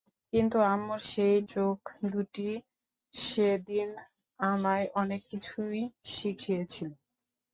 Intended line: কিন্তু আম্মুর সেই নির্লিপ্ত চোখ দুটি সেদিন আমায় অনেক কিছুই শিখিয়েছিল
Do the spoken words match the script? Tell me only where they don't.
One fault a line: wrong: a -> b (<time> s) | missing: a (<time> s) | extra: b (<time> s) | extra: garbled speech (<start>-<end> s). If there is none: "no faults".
missing: নির্লিপ্ত (1.4 s)